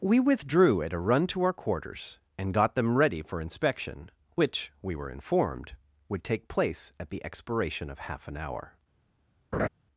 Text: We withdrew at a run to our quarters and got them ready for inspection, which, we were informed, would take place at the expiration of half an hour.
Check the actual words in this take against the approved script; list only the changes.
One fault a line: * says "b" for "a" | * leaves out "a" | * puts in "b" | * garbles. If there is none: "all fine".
all fine